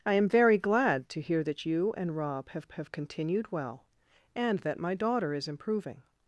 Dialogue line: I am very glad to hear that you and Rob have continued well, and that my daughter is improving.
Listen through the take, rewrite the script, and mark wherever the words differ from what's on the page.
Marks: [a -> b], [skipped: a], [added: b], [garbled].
I am very glad to hear that you and Rob have [added: have] continued well, and that my daughter is improving.